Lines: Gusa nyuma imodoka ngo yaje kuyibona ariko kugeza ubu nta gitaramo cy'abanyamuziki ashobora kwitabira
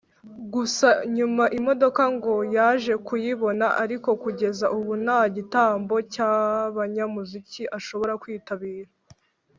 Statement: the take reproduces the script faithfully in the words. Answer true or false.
true